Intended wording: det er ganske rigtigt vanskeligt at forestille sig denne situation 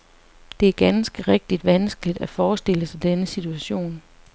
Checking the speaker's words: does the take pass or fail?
pass